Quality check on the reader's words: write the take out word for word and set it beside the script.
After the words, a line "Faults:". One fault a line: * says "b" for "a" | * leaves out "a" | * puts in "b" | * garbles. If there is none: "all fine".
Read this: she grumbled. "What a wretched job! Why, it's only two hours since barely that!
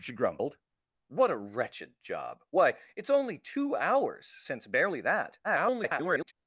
she grumbled. "What a wretched job! Why, it's only two hours since barely that! [garbled]
Faults:
* garbles